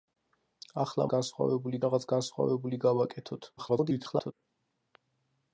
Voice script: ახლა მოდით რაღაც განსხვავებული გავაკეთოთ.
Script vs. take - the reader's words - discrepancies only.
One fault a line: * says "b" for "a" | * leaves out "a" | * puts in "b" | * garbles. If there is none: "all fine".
* says "განსხვავებული" for "მოდით"
* garbles